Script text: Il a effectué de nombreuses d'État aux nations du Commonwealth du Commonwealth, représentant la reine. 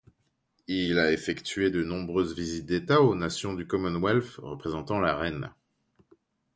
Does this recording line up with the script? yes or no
no